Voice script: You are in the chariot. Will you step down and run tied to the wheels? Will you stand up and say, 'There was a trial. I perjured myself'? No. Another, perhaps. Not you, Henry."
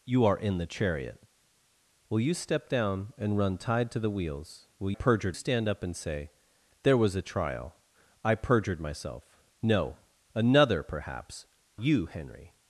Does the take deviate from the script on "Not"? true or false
true